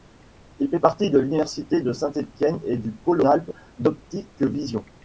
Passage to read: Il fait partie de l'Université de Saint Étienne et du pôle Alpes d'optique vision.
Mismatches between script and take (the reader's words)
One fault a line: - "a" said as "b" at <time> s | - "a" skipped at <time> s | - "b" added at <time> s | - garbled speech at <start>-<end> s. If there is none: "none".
none